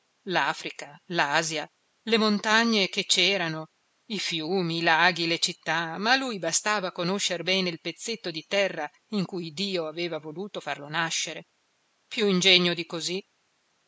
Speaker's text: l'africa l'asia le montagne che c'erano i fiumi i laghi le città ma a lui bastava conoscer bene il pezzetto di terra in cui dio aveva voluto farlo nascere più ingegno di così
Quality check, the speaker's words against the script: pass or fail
pass